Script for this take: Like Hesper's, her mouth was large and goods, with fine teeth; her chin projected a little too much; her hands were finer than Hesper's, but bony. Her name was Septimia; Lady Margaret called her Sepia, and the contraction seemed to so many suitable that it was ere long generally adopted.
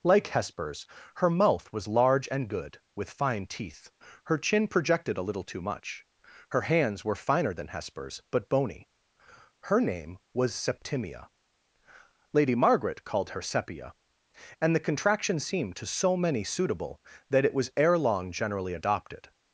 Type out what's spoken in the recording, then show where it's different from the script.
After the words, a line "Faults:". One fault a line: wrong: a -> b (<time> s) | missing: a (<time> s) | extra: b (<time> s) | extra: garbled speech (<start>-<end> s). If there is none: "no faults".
Like Hesper's, her mouth was large and good, with fine teeth; her chin projected a little too much; her hands were finer than Hesper's, but bony. Her name was Septimia; Lady Margaret called her Sepia, and the contraction seemed to so many suitable that it was ere long generally adopted.
Faults:
wrong: goods -> good (2.5 s)